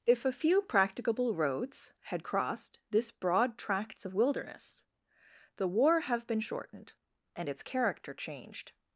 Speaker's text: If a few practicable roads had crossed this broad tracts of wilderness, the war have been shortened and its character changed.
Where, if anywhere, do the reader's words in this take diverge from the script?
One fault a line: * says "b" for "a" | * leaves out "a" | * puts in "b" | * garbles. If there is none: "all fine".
all fine